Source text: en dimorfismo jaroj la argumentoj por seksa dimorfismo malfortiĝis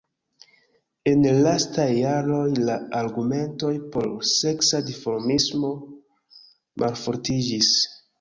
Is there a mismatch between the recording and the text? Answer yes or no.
yes